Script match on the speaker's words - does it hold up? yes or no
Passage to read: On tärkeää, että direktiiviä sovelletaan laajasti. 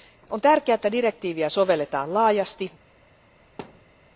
yes